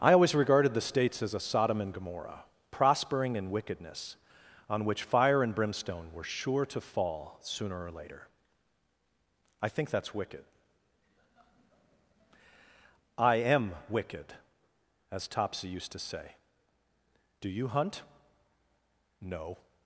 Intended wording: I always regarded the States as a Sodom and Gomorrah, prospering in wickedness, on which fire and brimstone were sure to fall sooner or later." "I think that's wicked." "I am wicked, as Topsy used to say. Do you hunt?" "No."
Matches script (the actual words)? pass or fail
pass